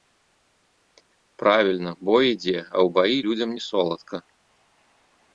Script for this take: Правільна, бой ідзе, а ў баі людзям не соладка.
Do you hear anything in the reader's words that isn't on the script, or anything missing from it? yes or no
no